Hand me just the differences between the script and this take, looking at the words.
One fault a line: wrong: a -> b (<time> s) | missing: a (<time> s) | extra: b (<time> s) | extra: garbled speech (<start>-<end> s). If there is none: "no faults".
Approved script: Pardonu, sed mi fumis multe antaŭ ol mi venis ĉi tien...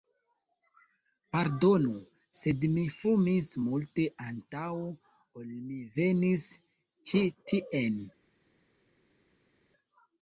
no faults